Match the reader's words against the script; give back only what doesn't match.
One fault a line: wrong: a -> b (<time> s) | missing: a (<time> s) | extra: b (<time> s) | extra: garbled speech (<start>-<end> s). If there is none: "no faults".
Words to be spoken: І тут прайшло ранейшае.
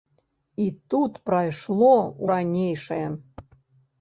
no faults